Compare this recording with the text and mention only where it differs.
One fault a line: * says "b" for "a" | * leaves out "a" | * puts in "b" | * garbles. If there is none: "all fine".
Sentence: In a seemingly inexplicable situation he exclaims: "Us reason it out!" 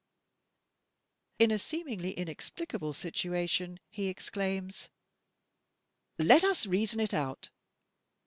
* puts in "Let"